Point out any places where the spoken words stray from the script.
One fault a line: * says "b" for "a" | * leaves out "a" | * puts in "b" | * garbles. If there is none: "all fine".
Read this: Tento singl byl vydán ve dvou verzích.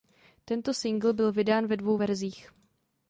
all fine